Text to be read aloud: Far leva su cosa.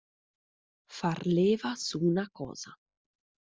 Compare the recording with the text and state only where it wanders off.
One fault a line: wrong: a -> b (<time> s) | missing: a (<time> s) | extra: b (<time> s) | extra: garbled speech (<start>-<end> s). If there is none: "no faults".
extra: una (2.0 s)